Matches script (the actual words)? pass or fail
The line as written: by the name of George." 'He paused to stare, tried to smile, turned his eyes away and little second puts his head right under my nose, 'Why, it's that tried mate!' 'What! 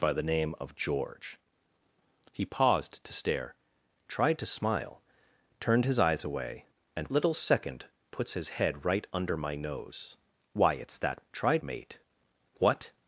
pass